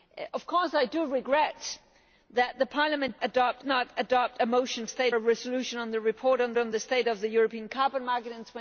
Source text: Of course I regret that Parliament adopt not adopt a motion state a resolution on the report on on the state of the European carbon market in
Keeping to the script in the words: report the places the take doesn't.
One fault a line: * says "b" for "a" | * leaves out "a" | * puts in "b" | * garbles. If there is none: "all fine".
all fine